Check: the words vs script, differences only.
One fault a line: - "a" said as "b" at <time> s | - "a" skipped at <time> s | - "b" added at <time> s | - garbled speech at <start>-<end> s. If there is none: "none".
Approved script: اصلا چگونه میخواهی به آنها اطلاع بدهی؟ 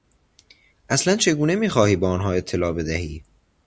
none